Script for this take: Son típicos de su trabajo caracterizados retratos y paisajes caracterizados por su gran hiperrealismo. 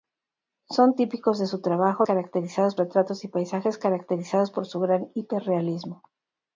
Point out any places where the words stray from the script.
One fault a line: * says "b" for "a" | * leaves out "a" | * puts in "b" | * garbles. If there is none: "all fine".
all fine